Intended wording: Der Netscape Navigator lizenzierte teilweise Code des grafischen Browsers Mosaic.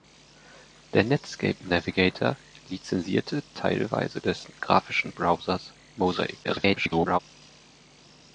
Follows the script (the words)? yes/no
no